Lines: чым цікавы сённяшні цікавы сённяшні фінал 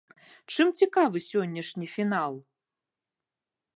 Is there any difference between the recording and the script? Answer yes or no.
yes